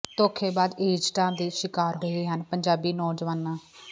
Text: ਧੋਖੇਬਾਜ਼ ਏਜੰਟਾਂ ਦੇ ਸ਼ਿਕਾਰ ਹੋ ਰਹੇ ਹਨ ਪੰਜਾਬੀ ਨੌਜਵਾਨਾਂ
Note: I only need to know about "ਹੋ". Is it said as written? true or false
false